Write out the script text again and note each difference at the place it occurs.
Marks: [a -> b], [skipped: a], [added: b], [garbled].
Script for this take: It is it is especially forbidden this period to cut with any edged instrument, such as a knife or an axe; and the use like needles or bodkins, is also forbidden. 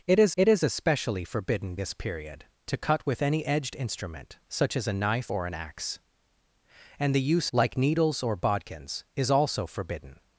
It is it is especially forbidden this period to cut with any edged instrument, such as a knife or an axe; and the use like needles or bodkins, is also forbidden.